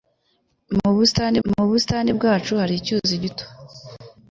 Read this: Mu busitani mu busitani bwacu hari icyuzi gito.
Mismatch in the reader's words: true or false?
false